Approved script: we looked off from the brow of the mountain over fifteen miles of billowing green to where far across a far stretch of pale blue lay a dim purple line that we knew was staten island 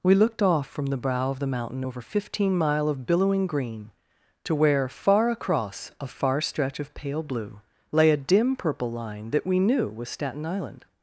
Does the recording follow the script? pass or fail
fail